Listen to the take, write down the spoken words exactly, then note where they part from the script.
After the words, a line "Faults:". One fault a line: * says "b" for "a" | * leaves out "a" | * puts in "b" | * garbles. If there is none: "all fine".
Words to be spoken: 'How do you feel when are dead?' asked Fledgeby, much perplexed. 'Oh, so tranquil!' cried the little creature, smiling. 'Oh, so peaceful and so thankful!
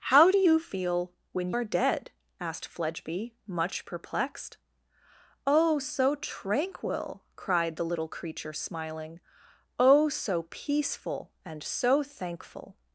'How do you feel when are dead?' asked Fledgeby, much perplexed. 'Oh, so tranquil!' cried the little creature, smiling. 'Oh, so peaceful and so thankful!
Faults:
all fine